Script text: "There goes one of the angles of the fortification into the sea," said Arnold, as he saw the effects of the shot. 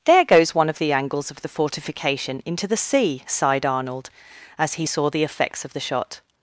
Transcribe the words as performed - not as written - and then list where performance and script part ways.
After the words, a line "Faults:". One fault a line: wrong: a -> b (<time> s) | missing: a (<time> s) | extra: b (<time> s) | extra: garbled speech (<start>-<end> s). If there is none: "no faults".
"There goes one of the angles of the fortification into the sea," sighed Arnold, as he saw the effects of the shot.
Faults:
wrong: said -> sighed (3.3 s)